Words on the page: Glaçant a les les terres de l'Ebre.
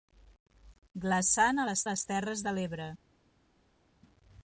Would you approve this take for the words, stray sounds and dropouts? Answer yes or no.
yes